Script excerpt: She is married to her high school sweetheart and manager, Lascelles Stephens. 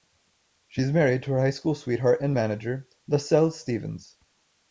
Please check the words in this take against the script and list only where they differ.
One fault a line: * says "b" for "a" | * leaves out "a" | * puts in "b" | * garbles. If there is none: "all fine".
all fine